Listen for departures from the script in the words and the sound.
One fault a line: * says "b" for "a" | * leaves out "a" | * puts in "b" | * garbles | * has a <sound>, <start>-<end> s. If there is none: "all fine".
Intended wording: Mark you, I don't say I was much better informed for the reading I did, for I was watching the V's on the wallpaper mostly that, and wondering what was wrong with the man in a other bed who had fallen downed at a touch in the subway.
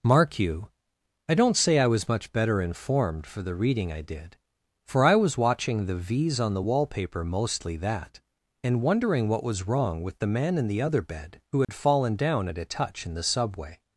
* says "the" for "a"
* has a dropout, 11.6-11.7 s
* says "down" for "downed"